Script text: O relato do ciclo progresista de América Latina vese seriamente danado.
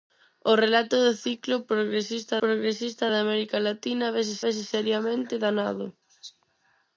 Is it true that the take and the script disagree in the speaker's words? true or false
true